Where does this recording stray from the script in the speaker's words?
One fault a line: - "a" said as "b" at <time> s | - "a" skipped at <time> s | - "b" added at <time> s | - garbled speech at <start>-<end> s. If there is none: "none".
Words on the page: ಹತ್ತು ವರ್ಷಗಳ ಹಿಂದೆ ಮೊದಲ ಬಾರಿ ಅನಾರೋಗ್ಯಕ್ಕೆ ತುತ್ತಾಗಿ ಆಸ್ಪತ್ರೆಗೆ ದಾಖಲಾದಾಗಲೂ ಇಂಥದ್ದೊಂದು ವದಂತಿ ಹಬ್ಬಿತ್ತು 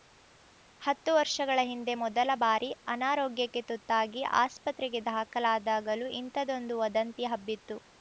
none